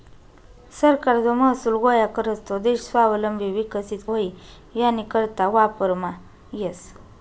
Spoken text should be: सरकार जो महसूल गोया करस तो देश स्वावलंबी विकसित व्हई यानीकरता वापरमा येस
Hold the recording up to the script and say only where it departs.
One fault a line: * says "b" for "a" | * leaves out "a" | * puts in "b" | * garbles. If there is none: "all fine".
all fine